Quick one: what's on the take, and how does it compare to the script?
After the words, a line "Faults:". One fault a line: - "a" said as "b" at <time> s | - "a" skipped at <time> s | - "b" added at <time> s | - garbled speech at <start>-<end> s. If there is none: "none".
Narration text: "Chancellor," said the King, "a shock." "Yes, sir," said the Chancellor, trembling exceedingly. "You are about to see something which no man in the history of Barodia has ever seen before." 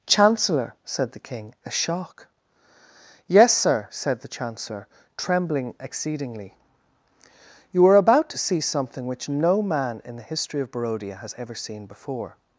"Chancellor," said the King, "a shock." "Yes, sir," said the Chancellor, trembling exceedingly. "You are about to see something which no man in the history of Barodia has ever seen before."
Faults:
none